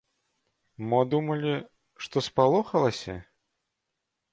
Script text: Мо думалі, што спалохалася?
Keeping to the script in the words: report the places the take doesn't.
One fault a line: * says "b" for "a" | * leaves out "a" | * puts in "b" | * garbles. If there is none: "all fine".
all fine